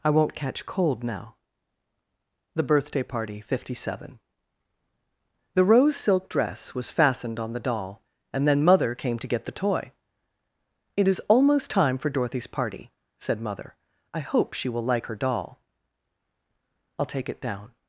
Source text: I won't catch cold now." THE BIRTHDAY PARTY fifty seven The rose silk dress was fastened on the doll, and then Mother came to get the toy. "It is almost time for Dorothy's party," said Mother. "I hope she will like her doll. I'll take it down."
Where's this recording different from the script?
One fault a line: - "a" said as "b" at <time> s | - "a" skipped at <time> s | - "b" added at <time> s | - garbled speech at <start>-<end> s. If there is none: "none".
none